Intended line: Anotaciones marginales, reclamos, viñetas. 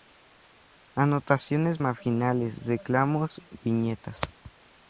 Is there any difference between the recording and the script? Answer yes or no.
no